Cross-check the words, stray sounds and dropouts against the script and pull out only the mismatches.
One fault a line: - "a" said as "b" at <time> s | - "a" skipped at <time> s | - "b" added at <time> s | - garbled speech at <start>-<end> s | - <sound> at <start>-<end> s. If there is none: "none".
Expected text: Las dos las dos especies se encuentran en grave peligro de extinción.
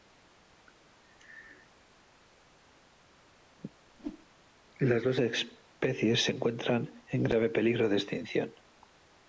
- whoosh at 3.9-4.3 s
- "las dos" skipped at 5.2 s